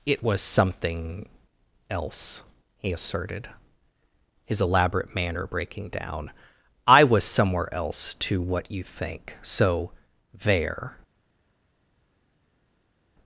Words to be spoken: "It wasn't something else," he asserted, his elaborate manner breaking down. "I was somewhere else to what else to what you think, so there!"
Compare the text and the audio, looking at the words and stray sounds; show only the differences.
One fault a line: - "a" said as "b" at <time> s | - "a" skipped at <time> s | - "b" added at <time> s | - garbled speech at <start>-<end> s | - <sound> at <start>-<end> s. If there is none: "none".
- "wasn't" said as "was" at 0.2 s
- "else to what" skipped at 8.7 s